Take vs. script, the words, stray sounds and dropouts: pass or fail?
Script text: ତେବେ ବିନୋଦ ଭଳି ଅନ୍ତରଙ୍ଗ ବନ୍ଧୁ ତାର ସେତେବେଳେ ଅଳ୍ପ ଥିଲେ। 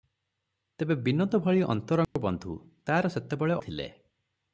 fail